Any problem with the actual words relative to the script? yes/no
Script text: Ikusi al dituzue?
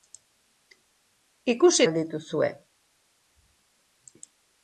no